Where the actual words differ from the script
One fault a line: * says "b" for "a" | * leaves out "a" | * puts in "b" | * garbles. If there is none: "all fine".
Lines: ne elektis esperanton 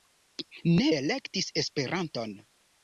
all fine